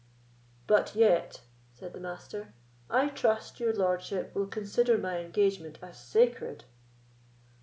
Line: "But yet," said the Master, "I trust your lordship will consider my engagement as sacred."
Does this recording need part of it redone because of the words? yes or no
no